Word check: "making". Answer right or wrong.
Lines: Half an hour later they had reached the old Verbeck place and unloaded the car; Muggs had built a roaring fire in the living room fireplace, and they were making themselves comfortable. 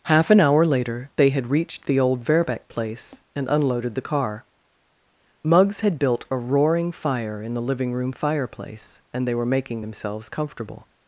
right